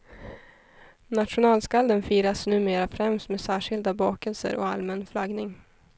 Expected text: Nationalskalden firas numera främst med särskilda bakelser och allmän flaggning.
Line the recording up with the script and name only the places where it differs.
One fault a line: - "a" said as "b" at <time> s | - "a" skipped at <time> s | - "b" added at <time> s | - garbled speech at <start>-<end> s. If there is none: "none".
none